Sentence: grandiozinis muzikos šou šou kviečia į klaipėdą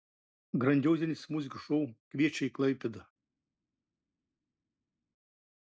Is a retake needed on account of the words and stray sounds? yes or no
yes